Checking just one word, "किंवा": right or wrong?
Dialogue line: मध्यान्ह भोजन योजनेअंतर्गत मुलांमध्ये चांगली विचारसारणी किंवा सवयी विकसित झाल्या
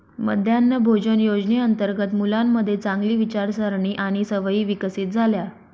wrong